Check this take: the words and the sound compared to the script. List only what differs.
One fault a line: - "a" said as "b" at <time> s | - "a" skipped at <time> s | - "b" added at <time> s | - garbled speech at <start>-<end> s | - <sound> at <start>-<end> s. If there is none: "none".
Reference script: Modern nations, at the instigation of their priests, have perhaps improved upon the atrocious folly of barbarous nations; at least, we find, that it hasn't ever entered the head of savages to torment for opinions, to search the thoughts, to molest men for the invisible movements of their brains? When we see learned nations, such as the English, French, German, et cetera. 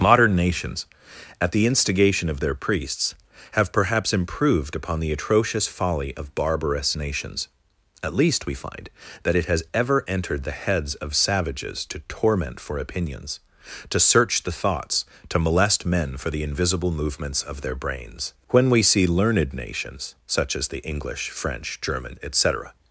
- "hasn't" said as "has" at 9.5 s
- "head" said as "heads" at 10.6 s